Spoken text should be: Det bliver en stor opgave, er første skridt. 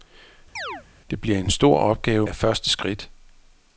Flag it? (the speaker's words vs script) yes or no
no